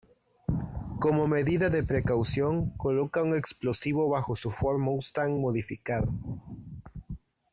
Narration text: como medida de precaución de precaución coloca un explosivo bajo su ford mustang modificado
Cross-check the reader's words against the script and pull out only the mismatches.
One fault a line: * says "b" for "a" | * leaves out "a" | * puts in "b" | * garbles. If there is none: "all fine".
* leaves out "de precaución"